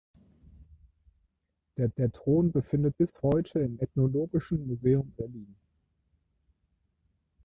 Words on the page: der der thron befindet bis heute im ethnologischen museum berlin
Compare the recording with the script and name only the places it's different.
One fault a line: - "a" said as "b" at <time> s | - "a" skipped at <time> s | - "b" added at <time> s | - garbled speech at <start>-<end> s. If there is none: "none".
none